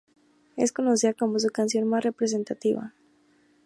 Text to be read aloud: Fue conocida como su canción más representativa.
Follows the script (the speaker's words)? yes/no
no